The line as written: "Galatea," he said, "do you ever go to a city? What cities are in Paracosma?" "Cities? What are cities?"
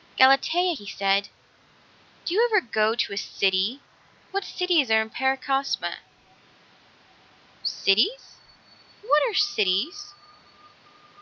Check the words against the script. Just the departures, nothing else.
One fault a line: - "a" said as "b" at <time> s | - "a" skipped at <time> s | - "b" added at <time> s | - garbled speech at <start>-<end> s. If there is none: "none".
none